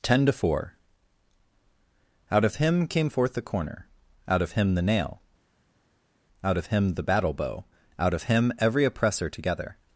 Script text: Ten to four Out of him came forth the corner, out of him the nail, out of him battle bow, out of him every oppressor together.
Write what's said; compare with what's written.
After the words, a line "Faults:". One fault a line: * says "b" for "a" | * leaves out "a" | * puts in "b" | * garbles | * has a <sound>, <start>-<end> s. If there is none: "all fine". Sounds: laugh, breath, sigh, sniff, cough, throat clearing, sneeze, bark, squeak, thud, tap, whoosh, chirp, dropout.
Ten to four Out of him came forth the corner, out of him the nail, out of him the battle bow, out of him every oppressor together.
Faults:
* puts in "the"